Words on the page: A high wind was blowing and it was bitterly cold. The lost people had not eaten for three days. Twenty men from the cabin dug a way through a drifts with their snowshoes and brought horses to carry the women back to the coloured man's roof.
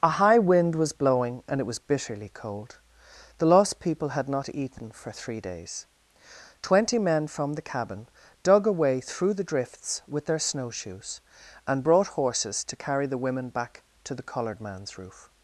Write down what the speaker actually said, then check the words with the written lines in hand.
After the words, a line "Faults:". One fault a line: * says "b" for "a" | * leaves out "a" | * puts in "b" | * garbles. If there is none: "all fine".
A high wind was blowing and it was bitterly cold. The lost people had not eaten for three days. Twenty men from the cabin dug a way through the drifts with their snowshoes and brought horses to carry the women back to the coloured man's roof.
Faults:
* says "the" for "a"